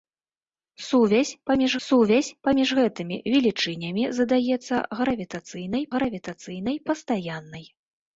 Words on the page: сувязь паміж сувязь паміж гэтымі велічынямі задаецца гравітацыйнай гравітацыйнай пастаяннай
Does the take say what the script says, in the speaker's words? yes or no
yes